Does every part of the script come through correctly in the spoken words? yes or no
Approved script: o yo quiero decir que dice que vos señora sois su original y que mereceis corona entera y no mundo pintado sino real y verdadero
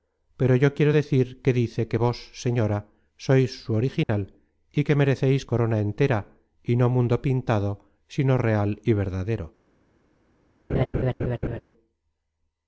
no